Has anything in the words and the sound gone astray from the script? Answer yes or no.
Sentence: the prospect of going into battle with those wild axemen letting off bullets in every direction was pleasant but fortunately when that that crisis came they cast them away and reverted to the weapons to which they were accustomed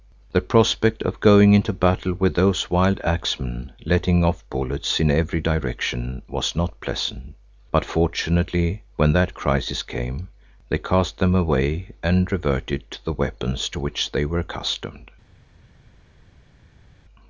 yes